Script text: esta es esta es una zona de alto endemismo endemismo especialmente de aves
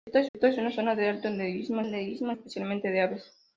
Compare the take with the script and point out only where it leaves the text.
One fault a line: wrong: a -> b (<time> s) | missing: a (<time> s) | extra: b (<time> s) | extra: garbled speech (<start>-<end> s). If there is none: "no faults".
no faults